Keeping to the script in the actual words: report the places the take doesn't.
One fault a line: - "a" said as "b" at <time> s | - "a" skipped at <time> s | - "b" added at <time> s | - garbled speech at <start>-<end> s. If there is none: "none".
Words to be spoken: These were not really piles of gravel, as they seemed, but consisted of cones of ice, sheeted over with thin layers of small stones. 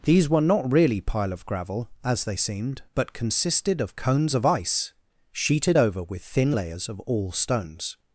- "piles" said as "pile" at 1.0 s
- "small" said as "all" at 7.0 s